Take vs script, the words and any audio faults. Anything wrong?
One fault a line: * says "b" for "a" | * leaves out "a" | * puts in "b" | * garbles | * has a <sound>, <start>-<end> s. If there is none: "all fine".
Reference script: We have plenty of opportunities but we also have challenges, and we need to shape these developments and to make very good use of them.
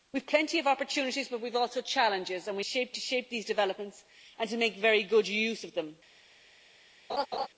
* says "shape" for "need"
* has a laugh, 7.1-7.5 s